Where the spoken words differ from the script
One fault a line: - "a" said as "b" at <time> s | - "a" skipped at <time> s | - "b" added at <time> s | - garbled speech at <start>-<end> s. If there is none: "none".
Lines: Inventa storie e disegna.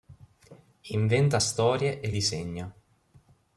none